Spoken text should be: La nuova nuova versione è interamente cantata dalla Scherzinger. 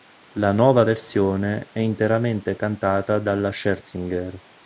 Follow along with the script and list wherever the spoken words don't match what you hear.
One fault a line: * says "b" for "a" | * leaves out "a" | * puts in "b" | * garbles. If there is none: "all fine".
* leaves out "nuova"